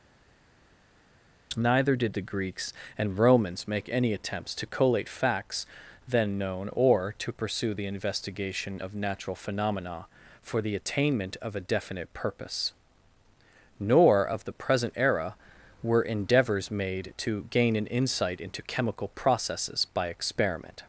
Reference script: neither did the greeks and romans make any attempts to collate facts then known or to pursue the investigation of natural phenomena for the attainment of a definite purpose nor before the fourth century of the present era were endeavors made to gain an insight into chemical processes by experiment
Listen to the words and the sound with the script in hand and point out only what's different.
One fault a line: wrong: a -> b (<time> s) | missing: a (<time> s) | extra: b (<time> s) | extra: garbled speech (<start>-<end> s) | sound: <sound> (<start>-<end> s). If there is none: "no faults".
missing: before the fourth century (14.2 s)